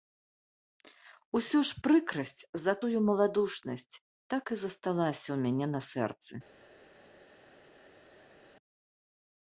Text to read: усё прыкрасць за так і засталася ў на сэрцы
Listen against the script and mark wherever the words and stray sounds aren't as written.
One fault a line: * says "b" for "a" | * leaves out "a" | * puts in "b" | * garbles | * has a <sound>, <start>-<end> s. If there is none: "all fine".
* puts in "ж"
* puts in "тую маладушнасць"
* puts in "мяне"